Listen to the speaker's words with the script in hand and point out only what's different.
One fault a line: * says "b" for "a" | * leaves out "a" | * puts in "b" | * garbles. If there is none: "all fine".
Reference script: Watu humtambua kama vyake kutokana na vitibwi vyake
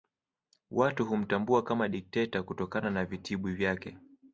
* says "dikteta" for "vyake"